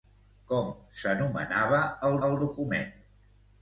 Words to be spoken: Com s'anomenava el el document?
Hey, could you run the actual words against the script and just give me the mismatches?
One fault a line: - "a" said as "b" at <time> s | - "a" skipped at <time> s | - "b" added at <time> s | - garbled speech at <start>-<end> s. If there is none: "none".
none